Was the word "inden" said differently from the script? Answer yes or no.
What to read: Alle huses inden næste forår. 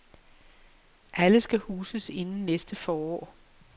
no